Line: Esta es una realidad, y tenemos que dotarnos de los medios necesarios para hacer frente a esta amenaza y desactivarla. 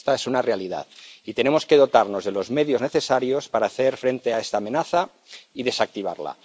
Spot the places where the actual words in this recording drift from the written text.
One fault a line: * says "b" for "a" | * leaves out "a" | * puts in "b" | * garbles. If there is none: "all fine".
all fine